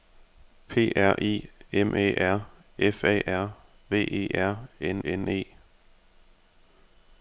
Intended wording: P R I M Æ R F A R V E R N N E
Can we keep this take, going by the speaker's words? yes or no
yes